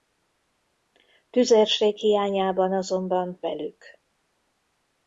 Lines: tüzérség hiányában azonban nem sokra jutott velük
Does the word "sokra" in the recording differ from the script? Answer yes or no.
yes